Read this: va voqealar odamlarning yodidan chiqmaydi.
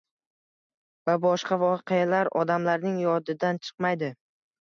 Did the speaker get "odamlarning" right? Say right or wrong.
right